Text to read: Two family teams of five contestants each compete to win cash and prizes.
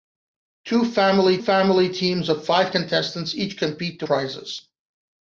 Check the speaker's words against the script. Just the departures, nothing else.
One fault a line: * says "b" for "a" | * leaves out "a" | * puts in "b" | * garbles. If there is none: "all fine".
* puts in "family"
* leaves out "win cash and"